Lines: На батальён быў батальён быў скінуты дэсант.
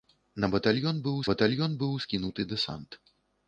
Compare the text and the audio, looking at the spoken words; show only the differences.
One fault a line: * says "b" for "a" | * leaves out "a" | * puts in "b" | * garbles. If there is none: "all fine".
all fine